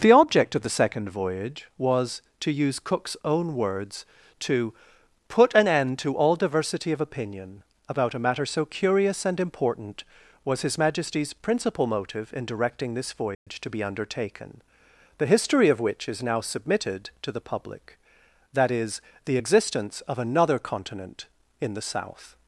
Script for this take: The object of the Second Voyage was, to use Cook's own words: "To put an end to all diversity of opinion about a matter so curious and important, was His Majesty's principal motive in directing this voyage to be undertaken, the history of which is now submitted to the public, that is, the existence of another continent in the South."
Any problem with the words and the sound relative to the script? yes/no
yes